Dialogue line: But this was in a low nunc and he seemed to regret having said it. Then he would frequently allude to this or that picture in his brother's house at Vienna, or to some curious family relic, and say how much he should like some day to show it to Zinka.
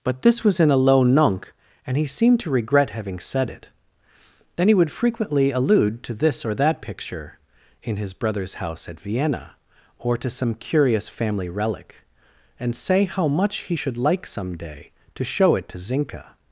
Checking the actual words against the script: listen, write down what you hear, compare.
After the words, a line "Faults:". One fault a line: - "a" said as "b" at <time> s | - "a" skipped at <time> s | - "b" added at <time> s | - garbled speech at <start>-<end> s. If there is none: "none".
But this was in a low nunc and he seemed to regret having said it. Then he would frequently allude to this or that picture in his brother's house at Vienna, or to some curious family relic, and say how much he should like some day to show it to Zinka.
Faults:
none